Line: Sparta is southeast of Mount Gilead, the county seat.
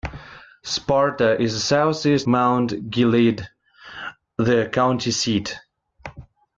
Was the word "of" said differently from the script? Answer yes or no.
yes